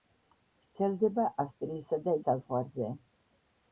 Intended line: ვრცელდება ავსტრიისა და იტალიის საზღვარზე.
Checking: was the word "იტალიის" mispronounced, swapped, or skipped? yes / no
yes